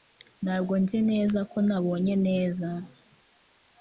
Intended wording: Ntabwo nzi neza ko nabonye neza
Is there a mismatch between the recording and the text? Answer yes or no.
no